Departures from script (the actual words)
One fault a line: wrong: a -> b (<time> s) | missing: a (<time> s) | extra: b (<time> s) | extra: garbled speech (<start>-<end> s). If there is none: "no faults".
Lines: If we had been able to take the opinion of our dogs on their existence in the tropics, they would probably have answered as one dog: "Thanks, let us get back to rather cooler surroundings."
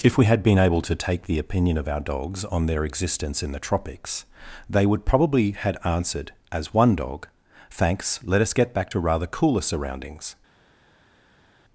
wrong: have -> had (5.5 s)